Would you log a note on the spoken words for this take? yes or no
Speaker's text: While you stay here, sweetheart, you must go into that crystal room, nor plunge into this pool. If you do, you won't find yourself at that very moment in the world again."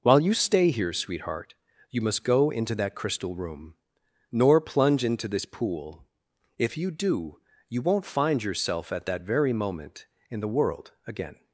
no